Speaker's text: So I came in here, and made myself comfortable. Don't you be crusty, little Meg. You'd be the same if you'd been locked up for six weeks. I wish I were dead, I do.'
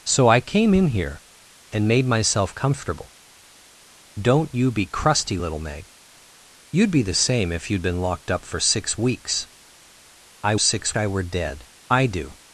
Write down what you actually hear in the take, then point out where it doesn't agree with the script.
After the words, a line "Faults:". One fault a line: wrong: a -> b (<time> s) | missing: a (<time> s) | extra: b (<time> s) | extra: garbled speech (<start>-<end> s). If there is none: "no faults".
So I came in here, and made myself comfortable. Don't you be crusty, little Meg. You'd be the same if you'd been locked up for six weeks. I six I were dead, I do.'
Faults:
wrong: wish -> six (10.6 s)